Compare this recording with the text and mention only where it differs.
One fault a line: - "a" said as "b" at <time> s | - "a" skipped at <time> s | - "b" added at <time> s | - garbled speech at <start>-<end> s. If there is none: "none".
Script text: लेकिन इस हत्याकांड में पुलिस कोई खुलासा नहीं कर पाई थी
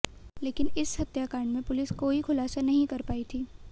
none